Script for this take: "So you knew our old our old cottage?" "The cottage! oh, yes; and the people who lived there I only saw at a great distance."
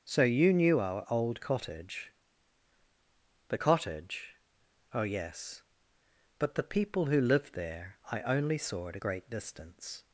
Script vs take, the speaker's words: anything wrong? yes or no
yes